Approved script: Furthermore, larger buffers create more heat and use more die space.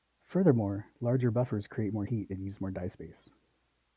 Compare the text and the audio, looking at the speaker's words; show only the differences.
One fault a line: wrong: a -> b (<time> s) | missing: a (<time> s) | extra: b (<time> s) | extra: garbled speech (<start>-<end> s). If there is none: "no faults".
no faults